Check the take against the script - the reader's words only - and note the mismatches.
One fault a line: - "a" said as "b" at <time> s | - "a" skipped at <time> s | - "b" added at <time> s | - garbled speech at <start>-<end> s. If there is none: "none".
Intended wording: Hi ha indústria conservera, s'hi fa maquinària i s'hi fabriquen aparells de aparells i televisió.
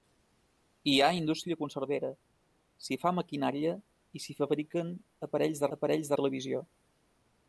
none